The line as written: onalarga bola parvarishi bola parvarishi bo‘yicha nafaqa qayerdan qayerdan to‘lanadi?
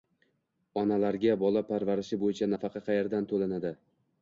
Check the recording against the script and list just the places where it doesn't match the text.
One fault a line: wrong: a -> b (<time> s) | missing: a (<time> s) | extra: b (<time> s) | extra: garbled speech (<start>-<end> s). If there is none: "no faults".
missing: bola parvarishi (2.2 s)
missing: qayerdan (3.3 s)